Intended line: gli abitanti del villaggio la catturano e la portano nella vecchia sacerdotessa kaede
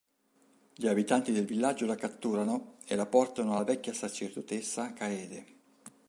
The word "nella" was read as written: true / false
false